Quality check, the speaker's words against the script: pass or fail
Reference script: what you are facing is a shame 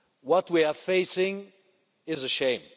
fail